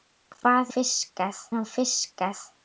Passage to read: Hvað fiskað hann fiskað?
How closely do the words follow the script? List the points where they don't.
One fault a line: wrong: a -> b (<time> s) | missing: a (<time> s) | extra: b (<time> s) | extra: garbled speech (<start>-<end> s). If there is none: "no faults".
no faults